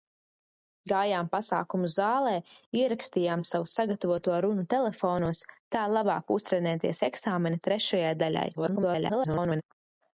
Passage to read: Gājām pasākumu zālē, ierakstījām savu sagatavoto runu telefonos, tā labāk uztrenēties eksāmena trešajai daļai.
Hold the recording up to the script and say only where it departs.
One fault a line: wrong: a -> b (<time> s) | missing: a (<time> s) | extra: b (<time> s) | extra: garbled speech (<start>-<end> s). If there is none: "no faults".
extra: garbled speech (8.5-9.6 s)